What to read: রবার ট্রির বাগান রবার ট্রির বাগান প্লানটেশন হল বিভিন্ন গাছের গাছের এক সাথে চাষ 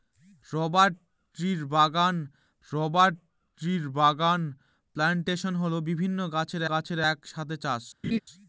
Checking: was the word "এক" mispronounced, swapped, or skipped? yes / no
no